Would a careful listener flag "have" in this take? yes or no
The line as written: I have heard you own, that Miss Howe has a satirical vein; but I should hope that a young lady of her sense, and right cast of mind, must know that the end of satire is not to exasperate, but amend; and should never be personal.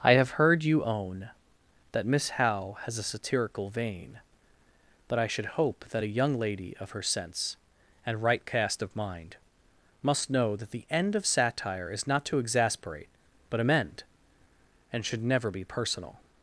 no